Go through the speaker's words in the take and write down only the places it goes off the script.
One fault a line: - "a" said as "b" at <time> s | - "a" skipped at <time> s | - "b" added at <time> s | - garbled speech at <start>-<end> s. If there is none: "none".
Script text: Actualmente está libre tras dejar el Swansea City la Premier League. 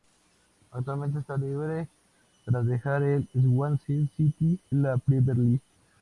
none